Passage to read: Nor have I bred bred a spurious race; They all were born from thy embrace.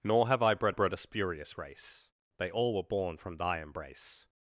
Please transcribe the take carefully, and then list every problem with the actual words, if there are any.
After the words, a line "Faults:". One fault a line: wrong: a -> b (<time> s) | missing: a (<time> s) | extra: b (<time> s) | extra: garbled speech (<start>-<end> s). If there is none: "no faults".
Nor have I bred bred a spurious race; They all were born from thy embrace.
Faults:
no faults